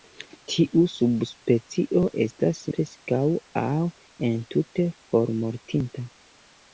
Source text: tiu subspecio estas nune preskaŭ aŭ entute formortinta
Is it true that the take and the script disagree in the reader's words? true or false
true